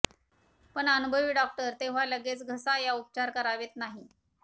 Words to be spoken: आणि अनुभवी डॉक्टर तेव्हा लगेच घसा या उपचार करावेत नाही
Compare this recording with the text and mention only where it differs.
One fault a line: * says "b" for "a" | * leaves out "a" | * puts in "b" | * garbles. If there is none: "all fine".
* says "पण" for "आणि"